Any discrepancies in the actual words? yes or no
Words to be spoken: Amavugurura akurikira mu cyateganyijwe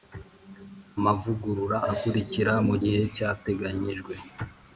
yes